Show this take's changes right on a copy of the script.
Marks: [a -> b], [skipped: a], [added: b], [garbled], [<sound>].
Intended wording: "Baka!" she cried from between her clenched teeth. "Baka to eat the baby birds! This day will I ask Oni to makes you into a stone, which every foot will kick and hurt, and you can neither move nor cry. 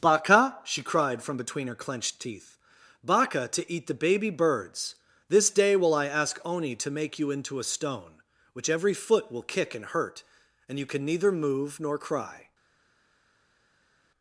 "Baka!" she cried from between her clenched teeth. "Baka to eat the baby birds! This day will I ask Oni to [makes -> make] you into a stone, which every foot will kick and hurt, and you can neither move nor cry.